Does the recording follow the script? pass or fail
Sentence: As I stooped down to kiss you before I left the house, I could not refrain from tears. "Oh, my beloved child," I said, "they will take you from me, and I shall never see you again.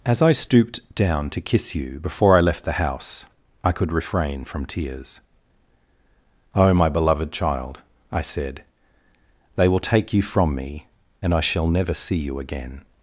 fail